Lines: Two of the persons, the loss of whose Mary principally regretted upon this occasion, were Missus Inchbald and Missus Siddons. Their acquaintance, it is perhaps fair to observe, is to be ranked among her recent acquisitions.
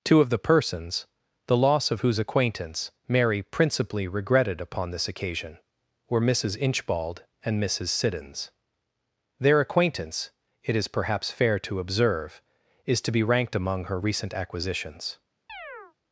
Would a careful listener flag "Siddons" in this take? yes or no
no